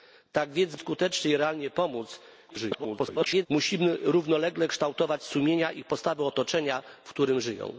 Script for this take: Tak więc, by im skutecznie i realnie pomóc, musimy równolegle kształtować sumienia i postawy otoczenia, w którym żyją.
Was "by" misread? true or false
true